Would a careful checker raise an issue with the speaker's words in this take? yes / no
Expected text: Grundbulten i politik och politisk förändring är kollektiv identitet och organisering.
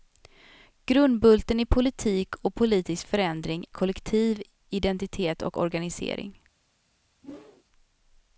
yes